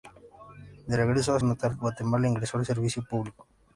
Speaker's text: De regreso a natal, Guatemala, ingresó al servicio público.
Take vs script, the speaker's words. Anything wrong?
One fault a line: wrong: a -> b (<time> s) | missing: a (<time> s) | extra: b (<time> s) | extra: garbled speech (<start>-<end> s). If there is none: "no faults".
no faults